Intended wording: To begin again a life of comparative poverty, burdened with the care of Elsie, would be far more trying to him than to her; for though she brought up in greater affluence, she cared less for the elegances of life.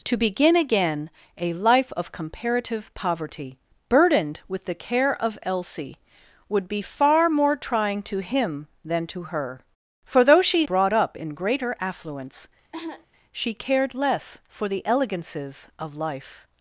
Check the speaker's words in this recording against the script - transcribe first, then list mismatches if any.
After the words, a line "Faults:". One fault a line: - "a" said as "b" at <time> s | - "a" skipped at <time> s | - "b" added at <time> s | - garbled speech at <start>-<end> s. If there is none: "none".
To begin again a life of comparative poverty, burdened with the care of Elsie, would be far more trying to him than to her; for though she brought up in greater affluence, she cared less for the elegances of life.
Faults:
none